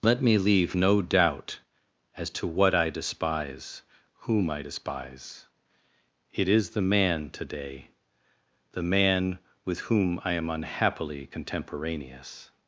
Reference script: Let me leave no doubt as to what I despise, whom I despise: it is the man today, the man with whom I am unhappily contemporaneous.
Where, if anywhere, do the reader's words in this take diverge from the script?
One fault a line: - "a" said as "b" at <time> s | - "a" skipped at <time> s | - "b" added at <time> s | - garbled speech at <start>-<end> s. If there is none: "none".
none